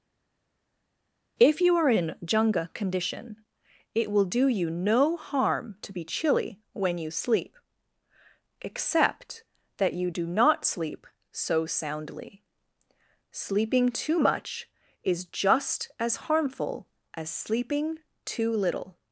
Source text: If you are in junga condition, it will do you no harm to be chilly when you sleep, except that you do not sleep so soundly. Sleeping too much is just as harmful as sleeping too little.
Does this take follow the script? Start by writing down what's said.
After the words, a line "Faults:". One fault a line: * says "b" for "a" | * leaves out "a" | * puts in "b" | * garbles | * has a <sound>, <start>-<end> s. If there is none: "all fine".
If you are in junga condition, it will do you no harm to be chilly when you sleep, except that you do not sleep so soundly. Sleeping too much is just as harmful as sleeping too little.
Faults:
all fine